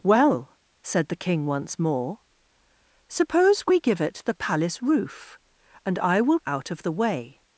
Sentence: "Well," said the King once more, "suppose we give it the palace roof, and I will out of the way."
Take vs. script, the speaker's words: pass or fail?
pass